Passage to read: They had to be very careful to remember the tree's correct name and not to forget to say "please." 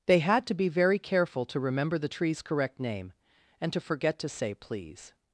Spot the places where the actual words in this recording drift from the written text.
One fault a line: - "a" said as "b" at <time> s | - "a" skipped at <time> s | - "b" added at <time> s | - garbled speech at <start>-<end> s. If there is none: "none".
- "not" skipped at 3.7 s